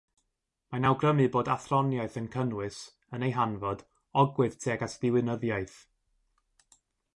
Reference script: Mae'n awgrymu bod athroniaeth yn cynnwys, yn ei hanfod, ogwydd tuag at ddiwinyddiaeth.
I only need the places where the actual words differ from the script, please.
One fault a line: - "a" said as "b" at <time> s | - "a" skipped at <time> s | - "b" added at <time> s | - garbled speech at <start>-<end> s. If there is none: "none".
none